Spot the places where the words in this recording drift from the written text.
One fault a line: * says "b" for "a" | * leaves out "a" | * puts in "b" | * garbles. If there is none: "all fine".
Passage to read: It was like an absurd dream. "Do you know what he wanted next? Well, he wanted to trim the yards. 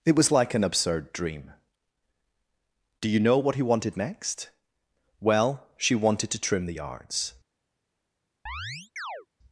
* says "she" for "he"